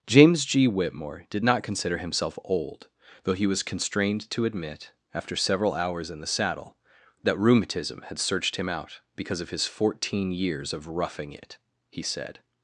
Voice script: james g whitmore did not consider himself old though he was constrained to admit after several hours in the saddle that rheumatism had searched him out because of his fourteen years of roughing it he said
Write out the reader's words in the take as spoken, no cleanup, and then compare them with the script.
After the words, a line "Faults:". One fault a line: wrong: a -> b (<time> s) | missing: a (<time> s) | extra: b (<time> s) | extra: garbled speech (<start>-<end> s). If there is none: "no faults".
james g whitmore did not consider himself old though he was constrained to admit after several hours in the saddle that rheumatism had searched him out because of his fourteen years of roughing it he said
Faults:
no faults